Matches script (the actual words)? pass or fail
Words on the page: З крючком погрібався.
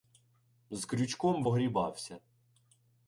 pass